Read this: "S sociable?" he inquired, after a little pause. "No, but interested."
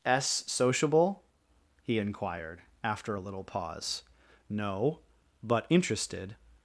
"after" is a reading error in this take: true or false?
false